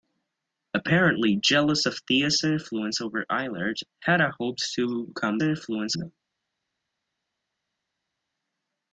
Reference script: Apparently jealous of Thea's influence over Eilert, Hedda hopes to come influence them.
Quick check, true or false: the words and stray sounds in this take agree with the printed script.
true